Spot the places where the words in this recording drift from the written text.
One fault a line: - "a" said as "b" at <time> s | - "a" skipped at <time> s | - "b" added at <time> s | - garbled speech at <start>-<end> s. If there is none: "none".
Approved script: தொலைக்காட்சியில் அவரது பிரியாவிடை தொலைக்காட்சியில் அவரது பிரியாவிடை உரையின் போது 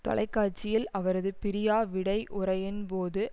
- "தொலைக்காட்சியில் அவரது பிரியாவிடை" skipped at 2.2 s